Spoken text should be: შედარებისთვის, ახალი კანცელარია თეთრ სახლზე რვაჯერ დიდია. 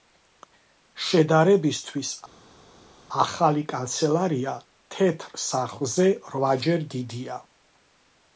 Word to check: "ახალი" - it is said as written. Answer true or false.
true